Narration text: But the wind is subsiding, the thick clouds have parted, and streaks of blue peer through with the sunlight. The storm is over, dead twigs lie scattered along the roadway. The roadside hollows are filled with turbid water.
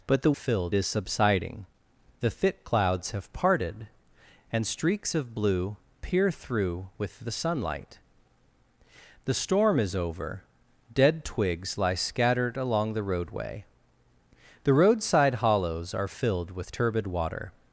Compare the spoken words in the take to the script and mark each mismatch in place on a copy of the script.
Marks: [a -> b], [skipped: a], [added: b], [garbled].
But the [wind -> filled] is subsiding, the thick clouds have parted, and streaks of blue peer through with the sunlight. The storm is over, dead twigs lie scattered along the roadway. The roadside hollows are filled with turbid water.